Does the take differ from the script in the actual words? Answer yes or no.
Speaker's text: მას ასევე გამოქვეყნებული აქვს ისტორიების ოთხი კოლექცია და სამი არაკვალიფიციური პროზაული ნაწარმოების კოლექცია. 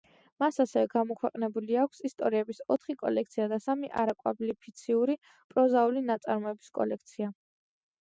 no